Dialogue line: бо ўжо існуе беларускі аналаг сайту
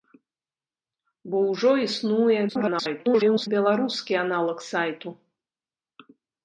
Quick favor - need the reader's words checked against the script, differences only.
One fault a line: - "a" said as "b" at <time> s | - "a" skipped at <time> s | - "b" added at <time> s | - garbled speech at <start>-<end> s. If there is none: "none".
- garbled speech at 2.5-3.5 s